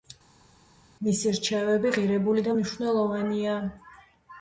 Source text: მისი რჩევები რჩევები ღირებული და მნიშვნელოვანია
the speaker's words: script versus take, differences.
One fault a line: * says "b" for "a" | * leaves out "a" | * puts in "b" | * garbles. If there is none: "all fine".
* leaves out "რჩევები"